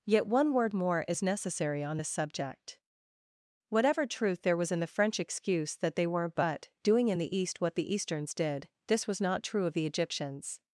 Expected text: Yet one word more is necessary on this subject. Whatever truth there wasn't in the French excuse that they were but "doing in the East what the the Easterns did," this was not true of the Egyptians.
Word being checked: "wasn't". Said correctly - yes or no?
no